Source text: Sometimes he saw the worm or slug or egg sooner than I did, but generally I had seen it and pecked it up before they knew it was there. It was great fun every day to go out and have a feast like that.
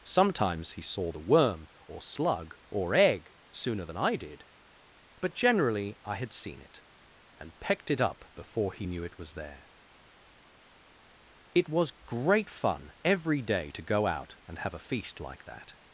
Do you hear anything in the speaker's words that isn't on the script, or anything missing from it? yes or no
yes